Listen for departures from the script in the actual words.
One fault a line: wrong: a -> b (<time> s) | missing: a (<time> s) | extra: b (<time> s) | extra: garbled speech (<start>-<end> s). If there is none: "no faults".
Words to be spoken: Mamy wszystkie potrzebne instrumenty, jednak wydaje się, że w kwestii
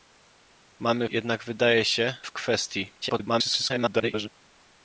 missing: wszystkie potrzebne instrumenty (1.1 s)
missing: że (2.2 s)
extra: garbled speech (3.0-4.3 s)